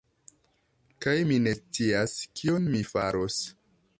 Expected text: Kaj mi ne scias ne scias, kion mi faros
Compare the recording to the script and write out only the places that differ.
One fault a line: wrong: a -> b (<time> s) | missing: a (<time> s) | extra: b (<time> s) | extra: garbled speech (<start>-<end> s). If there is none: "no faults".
missing: ne scias (2.2 s)